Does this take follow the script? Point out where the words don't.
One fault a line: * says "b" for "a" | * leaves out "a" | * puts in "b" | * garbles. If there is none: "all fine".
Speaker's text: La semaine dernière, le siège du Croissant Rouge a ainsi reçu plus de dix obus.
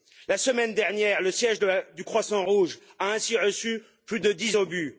all fine